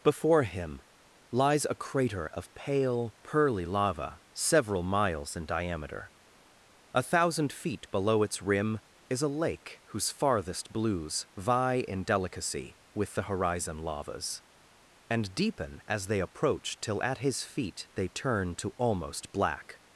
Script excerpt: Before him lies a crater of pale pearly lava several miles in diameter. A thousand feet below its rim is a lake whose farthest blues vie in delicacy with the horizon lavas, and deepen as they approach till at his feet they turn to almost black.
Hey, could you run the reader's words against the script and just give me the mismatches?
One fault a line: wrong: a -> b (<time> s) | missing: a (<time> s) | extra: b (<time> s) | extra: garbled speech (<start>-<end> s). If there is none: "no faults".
no faults